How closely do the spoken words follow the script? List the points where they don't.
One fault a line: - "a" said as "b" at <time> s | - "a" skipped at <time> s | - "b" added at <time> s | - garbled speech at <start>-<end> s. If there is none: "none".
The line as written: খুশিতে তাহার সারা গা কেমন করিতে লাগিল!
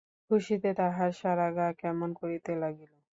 none